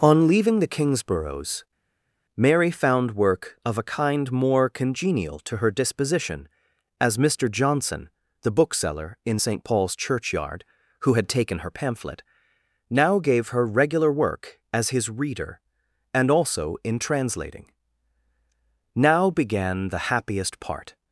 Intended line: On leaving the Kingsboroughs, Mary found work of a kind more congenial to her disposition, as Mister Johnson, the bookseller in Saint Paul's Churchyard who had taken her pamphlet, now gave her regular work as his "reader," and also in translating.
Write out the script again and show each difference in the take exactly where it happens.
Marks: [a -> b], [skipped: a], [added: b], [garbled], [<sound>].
On leaving the Kingsboroughs, Mary found work of a kind more congenial to her disposition, as Mister Johnson, the bookseller in Saint Paul's Churchyard who had taken her pamphlet, now gave her regular work as his "reader," and also in translating. [added: Now began the happiest part]